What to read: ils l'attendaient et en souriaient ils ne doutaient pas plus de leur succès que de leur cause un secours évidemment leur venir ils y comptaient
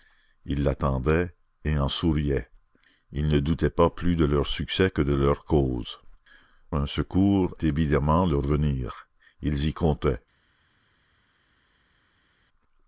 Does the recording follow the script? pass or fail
pass